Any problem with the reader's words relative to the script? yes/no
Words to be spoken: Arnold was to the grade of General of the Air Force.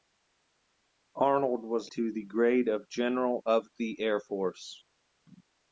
no